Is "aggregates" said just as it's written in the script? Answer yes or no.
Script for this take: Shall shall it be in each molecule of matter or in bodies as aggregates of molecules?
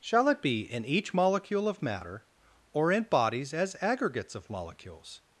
yes